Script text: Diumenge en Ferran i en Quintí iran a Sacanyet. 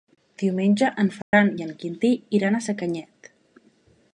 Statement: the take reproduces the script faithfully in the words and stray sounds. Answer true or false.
false